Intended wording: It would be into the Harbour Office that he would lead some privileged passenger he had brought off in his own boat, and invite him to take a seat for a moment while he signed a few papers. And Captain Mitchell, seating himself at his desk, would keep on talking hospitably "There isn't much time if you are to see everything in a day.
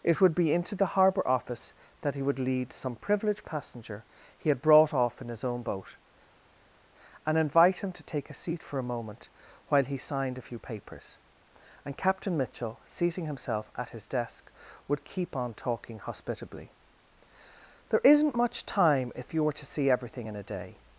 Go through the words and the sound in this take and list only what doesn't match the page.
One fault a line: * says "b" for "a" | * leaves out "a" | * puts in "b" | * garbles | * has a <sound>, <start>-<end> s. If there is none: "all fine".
* says "were" for "are"